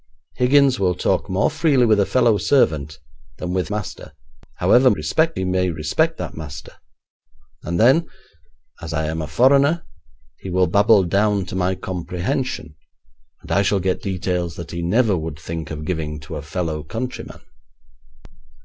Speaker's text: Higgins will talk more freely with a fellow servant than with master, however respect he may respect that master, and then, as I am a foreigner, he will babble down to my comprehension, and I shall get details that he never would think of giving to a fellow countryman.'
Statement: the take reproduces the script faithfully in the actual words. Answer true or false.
true